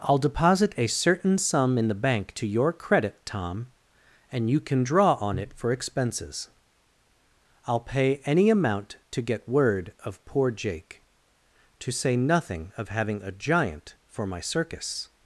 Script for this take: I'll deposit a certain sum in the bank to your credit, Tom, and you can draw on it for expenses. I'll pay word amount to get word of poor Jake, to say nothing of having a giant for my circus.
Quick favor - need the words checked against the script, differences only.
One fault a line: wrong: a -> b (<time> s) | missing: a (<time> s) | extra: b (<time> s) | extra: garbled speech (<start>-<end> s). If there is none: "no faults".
wrong: word -> any (8.2 s)